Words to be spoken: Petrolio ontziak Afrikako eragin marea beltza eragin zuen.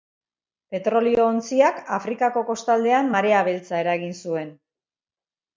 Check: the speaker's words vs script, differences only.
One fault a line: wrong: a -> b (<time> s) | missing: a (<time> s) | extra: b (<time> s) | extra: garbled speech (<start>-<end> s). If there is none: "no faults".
wrong: eragin -> kostaldean (2.5 s)